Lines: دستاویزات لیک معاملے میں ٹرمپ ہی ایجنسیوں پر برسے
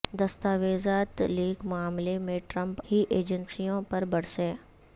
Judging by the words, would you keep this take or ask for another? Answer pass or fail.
pass